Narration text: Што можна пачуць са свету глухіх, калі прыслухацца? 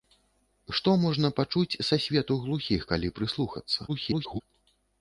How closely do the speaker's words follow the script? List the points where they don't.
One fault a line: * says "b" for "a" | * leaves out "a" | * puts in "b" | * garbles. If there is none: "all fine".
* garbles